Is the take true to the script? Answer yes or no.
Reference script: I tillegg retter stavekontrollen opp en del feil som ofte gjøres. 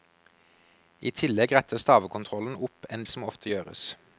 no